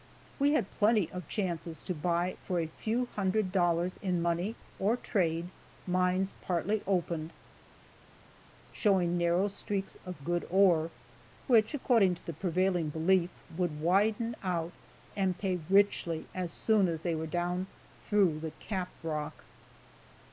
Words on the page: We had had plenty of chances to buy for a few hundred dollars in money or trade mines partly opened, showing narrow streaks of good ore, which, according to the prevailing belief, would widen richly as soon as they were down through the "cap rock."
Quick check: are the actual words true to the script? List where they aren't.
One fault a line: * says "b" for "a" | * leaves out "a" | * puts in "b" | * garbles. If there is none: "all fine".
* leaves out "had"
* puts in "out and pay"